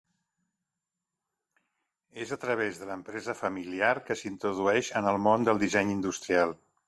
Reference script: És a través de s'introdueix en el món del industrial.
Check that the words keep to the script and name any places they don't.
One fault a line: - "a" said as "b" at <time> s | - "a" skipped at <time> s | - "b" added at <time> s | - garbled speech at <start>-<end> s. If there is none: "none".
- "l'empresa familiar que" added at 2.9 s
- "disseny" added at 5.7 s